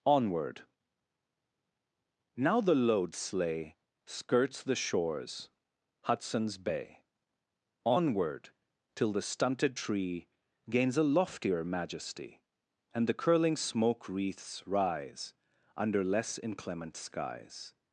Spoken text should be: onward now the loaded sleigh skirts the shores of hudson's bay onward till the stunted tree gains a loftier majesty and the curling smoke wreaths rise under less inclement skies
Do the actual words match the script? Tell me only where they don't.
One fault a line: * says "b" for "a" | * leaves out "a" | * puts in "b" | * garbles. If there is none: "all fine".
* says "load" for "loaded"
* leaves out "of"